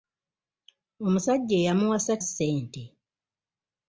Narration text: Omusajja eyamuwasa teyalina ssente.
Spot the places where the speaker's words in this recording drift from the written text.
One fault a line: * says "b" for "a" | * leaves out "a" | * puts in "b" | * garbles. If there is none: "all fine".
* leaves out "teyalina"